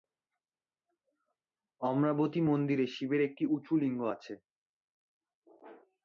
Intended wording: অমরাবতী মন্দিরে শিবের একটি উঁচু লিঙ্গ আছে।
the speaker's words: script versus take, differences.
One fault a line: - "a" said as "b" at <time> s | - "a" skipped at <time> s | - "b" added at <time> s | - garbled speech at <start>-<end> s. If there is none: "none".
none